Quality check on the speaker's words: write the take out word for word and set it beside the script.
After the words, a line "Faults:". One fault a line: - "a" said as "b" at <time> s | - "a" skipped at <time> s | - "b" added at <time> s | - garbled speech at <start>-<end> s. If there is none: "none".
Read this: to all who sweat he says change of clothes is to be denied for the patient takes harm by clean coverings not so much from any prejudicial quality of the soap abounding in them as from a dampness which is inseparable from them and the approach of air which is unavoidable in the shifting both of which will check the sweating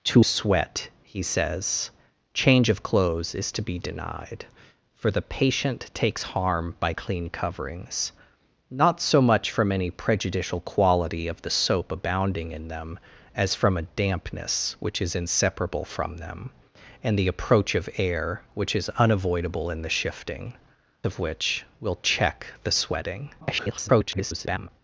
to sweat he says change of clothes is to be denied for the patient takes harm by clean coverings not so much from any prejudicial quality of the soap abounding in them as from a dampness which is inseparable from them and the approach of air which is unavoidable in the shifting of which will check the sweating [garbled]
Faults:
- "all who" skipped at 0.3 s
- "both" skipped at 20.5 s
- garbled speech at 23.4-24.7 s